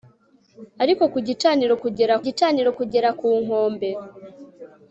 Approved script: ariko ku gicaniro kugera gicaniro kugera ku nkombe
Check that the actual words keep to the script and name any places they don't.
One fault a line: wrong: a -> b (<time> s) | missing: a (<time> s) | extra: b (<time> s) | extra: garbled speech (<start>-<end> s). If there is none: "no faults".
no faults